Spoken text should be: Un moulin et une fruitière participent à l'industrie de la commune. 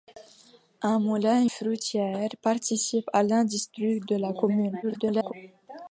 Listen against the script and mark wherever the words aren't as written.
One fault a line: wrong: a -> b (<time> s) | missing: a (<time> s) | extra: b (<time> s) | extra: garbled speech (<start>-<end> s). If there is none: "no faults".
missing: une (1.4 s)
extra: garbled speech (4.8-5.3 s)